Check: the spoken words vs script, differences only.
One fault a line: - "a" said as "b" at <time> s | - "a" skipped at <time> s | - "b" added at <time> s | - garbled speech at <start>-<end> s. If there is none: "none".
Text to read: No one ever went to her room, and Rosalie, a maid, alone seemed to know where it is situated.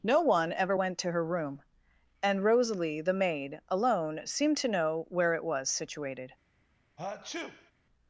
- "a" said as "the" at 3.0 s
- "is" said as "was" at 5.4 s